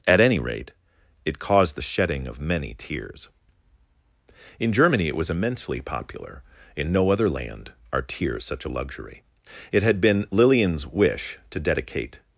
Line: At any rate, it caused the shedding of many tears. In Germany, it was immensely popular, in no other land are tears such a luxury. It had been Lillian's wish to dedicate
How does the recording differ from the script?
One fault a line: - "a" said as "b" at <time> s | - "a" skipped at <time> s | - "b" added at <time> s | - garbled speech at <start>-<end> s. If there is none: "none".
none